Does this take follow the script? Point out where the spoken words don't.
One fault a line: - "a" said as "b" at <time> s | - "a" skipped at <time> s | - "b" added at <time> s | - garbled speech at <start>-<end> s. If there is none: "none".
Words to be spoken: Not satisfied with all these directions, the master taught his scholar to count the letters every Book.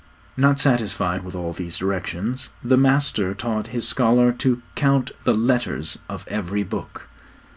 - "of" added at 6.1 s